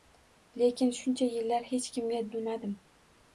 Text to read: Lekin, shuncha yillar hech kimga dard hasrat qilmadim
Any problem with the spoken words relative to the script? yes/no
yes